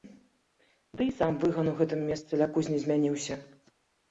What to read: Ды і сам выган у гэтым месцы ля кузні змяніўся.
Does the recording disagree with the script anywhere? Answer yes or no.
no